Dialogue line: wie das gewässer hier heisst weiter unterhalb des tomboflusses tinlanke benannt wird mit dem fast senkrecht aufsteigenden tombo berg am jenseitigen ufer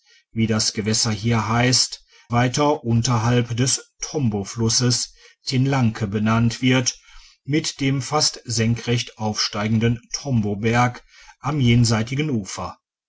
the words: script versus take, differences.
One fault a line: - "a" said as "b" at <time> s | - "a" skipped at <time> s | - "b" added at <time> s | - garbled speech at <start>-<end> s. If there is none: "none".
none